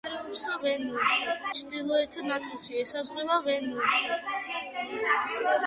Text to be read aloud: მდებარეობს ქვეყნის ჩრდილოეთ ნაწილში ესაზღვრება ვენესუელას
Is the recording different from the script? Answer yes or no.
yes